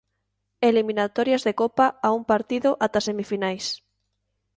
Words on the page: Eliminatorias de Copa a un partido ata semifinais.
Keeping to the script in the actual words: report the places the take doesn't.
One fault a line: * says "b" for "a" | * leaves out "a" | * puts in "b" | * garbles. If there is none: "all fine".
all fine